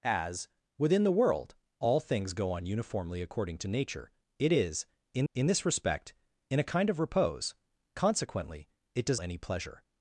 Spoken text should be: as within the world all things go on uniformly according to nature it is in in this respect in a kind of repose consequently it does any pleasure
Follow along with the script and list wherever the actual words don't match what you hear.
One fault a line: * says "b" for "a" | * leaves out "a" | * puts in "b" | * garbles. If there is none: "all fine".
all fine